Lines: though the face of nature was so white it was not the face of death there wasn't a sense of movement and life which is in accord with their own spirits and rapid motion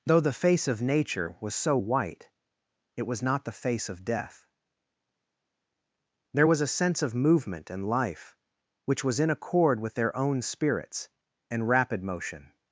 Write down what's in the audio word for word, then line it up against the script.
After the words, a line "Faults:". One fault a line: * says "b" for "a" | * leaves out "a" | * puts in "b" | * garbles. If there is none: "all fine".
though the face of nature was so white it was not the face of death there was a sense of movement and life which was in accord with their own spirits and rapid motion
Faults:
* says "was" for "wasn't"
* says "was" for "is"